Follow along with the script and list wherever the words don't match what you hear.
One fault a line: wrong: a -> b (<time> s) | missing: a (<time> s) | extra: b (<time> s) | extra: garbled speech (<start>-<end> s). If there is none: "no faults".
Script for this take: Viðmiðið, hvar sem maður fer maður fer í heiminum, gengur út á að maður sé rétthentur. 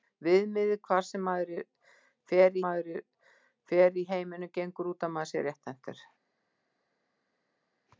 no faults